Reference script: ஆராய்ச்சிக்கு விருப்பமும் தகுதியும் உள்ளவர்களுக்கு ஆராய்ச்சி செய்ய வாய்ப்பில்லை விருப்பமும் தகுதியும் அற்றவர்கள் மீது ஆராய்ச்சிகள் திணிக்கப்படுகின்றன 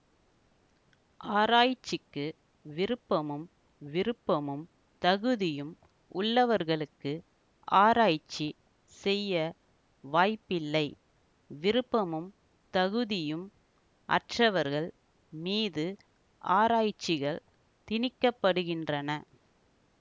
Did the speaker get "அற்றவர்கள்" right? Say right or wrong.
right